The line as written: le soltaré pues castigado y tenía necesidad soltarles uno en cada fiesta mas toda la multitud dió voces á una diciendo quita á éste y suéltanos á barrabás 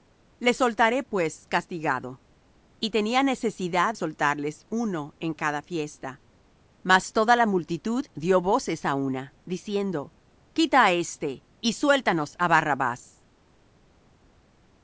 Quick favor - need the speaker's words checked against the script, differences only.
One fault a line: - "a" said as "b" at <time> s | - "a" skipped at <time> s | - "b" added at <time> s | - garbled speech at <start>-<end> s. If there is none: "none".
none